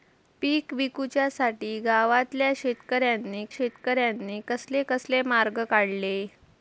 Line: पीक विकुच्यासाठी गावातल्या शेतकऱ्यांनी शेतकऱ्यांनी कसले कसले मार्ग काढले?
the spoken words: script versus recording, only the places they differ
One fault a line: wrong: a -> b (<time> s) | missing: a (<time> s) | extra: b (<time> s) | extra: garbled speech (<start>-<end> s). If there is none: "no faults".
no faults